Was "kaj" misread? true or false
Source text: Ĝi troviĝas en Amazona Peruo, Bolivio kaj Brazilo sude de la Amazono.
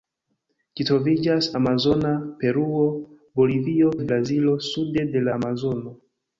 true